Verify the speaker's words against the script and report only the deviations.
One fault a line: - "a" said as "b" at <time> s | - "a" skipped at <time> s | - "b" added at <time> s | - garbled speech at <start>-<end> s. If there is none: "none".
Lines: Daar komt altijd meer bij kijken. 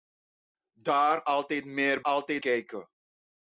- "komt" skipped at 1.2 s
- "bij" said as "altijd" at 2.0 s